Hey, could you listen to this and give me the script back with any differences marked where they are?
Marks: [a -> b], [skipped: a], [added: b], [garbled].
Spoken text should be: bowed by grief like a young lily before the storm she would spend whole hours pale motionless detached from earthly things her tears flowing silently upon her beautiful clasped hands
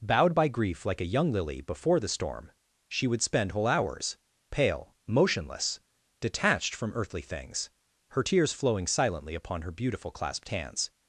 bowed by grief like a young lily before the storm she would spend whole hours pale motionless detached from earthly things her tears flowing silently upon her beautiful clasped hands